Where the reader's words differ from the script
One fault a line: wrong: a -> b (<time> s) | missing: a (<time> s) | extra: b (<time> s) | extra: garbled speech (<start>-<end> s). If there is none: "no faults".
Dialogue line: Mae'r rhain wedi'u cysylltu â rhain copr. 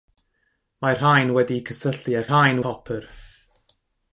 no faults